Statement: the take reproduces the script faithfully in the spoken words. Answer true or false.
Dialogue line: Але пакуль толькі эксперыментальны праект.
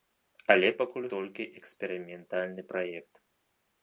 true